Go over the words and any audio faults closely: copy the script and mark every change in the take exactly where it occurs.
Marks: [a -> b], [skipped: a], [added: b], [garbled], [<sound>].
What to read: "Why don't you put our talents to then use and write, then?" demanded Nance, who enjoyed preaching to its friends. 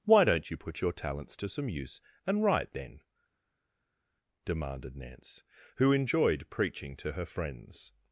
"Why don't you put [our -> your] talents to [then -> some] use and write, then?" demanded Nance, who enjoyed preaching to [its -> her] friends.